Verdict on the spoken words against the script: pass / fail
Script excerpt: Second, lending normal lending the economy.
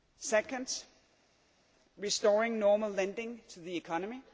fail